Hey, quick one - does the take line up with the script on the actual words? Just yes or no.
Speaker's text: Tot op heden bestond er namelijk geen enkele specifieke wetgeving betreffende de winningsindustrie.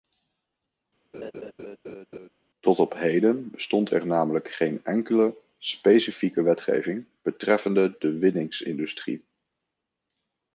yes